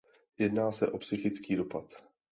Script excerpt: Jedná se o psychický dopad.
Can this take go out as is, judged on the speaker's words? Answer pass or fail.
pass